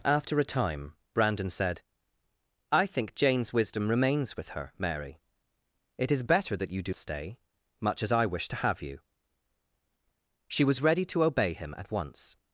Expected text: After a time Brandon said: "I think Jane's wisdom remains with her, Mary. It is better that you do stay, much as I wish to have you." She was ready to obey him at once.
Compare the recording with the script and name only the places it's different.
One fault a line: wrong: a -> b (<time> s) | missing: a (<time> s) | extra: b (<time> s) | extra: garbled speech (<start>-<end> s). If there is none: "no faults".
no faults